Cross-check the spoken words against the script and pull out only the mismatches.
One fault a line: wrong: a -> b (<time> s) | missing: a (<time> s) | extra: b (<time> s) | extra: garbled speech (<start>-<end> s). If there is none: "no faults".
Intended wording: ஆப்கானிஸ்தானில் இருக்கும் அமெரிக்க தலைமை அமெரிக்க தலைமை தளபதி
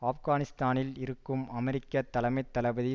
missing: அமெரிக்க தலைமை (2.4 s)